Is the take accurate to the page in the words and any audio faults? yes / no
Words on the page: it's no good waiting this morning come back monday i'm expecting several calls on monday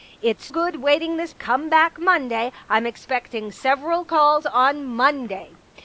no